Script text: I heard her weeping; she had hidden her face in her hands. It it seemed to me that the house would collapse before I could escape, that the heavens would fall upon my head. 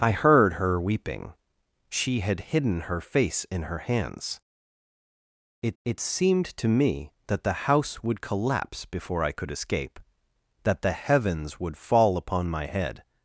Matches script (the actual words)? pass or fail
pass